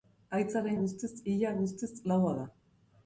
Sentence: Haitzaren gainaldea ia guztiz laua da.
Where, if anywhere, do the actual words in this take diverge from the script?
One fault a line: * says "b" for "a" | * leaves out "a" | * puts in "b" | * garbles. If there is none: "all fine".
* says "guztiz" for "gainaldea"